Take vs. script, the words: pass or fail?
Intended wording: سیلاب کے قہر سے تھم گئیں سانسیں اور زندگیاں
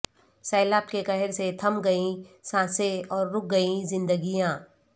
fail